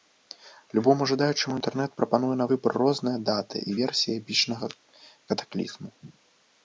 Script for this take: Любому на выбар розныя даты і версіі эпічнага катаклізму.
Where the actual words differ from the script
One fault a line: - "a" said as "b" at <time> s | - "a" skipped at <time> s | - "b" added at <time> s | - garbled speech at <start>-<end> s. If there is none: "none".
- "жадаючаму інтэрнэт прапануе" added at 1.1 s